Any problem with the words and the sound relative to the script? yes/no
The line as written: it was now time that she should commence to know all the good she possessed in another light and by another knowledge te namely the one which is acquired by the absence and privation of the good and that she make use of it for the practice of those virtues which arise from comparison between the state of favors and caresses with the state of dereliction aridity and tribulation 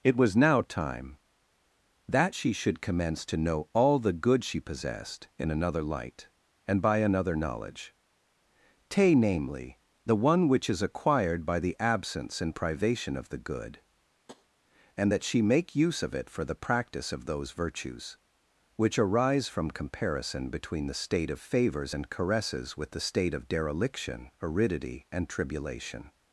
yes